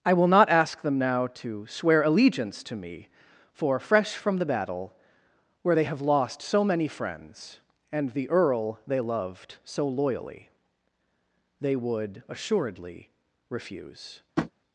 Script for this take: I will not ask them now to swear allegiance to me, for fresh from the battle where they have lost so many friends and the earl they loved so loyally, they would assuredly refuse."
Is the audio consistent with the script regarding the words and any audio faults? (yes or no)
no